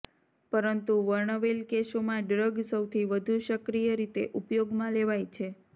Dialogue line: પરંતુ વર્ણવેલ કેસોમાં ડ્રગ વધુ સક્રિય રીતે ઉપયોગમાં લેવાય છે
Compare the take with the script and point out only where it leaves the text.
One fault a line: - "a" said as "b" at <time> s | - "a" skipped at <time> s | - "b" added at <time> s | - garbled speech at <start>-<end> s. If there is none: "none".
- "સૌથી" added at 2.6 s